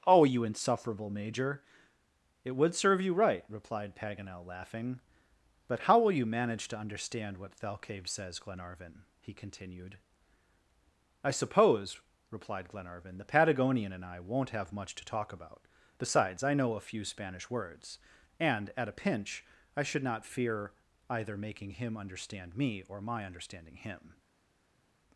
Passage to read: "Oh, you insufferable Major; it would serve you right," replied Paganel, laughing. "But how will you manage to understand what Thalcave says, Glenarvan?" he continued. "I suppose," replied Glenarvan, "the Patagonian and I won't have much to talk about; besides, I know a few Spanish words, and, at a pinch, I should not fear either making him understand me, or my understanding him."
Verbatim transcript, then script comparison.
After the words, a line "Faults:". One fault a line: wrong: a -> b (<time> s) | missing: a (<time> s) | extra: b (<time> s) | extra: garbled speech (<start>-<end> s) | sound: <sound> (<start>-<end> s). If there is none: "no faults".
"Oh, you insufferable Major; it would serve you right," replied Paganel, laughing. "But how will you manage to understand what Thalcave says, Glenarvan?" he continued. "I suppose," replied Glenarvan, "the Patagonian and I won't have much to talk about; besides, I know a few Spanish words, and, at a pinch, I should not fear either making him understand me, or my understanding him."
Faults:
no faults